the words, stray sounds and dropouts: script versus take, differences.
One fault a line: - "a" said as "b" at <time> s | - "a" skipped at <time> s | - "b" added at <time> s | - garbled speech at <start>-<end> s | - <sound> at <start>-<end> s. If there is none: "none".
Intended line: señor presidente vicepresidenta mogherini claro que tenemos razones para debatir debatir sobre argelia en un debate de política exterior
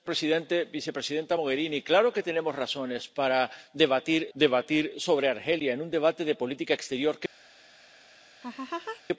- laugh at 8.4-9.0 s